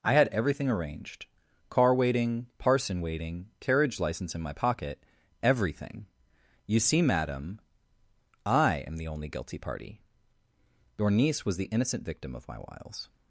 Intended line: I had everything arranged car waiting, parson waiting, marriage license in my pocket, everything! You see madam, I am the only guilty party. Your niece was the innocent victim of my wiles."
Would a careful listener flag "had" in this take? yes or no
no